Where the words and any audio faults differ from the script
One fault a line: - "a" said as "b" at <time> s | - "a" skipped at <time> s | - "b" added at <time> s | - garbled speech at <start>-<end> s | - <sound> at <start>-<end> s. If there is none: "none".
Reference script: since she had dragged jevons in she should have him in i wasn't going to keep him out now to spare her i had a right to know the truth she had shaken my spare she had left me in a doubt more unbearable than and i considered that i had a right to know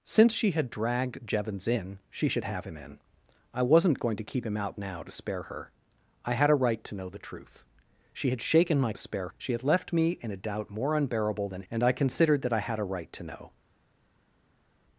none